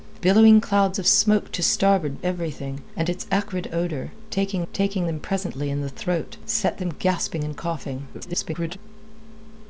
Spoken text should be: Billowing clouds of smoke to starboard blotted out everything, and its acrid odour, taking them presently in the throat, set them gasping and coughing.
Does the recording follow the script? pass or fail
fail